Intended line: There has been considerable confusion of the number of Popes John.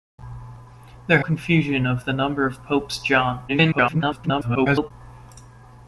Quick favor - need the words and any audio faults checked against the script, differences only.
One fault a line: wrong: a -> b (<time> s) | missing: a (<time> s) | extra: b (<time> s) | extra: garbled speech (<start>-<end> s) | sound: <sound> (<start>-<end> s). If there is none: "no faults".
missing: has been considerable (1.2 s)
extra: garbled speech (3.5-4.9 s)